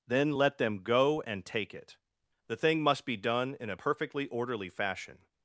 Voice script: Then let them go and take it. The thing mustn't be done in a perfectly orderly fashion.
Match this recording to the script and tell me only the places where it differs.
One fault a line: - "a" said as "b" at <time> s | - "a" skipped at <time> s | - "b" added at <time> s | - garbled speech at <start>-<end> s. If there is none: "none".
- "mustn't" said as "must" at 2.8 s